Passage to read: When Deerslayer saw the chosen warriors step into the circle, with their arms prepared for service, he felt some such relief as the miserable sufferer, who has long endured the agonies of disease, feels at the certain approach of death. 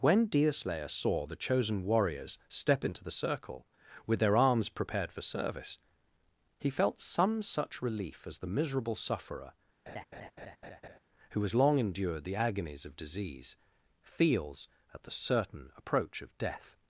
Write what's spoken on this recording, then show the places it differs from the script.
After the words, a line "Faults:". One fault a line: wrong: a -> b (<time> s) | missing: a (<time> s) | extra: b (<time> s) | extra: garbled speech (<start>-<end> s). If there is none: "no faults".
When Deerslayer saw the chosen warriors step into the circle, with their arms prepared for service, he felt some such relief as the miserable sufferer, who has long endured the agonies of disease, feels at the certain approach of death.
Faults:
no faults